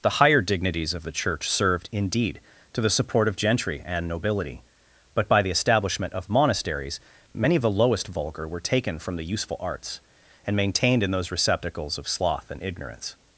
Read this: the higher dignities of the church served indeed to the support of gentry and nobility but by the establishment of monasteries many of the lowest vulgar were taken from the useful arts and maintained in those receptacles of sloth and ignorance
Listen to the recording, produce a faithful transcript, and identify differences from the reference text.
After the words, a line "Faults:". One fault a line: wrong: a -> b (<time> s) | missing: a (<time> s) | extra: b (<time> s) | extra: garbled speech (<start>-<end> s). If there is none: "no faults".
the higher dignities of the church served indeed to the support of gentry and nobility but by the establishment of monasteries many of the lowest vulgar were taken from the useful arts and maintained in those receptacles of sloth and ignorance
Faults:
no faults